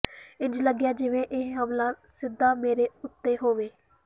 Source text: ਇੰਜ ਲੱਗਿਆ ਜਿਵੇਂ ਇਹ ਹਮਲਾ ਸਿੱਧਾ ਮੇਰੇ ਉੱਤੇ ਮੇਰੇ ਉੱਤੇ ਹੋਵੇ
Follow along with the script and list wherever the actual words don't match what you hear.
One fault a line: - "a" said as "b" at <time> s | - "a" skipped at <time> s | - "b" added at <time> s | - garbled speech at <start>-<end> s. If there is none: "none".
- "ਮੇਰੇ ਉੱਤੇ" skipped at 3.4 s